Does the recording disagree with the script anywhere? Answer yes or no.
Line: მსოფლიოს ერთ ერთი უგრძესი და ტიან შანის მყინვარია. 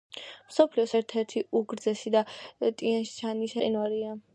no